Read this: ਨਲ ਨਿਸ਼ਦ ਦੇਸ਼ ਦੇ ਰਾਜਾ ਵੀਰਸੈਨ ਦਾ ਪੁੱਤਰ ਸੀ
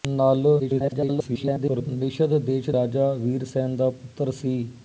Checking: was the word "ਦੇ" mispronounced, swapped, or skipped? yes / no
yes